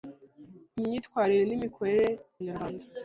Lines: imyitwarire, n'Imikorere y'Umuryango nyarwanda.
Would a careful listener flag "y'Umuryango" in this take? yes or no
yes